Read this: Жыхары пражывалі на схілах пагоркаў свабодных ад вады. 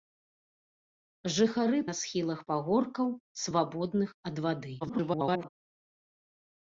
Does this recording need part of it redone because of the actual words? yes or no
yes